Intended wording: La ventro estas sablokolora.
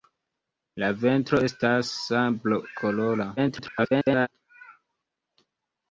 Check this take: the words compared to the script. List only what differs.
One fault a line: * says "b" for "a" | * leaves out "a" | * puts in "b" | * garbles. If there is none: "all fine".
* garbles